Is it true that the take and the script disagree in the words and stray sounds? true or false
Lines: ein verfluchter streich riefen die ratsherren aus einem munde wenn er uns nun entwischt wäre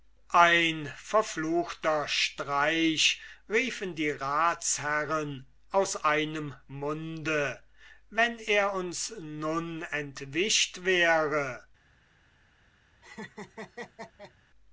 true